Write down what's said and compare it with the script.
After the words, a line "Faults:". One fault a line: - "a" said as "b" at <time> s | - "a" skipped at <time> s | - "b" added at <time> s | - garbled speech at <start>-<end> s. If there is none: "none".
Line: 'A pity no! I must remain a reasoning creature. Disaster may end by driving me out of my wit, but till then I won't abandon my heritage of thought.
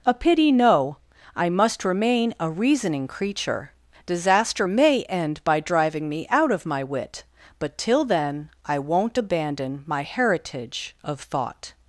'A pity no! I must remain a reasoning creature. Disaster may end by driving me out of my wit, but till then I won't abandon my heritage of thought.
Faults:
none